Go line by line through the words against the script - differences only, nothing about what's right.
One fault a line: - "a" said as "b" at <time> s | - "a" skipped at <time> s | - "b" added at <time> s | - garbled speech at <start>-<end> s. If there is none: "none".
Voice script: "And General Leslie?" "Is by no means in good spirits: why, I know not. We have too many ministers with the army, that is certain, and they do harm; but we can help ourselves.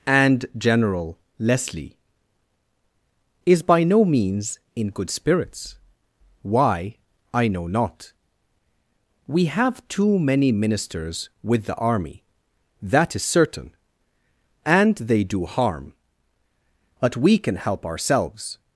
none